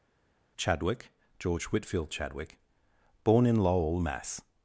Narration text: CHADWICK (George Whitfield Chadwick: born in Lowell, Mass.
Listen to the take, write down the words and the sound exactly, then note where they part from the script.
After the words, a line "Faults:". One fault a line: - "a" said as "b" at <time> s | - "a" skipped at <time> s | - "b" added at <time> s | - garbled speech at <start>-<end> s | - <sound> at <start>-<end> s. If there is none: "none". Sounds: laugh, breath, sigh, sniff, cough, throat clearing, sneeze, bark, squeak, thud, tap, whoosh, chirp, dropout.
CHADWICK (George Whitfield Chadwick: born in Lowell, Mass.
Faults:
none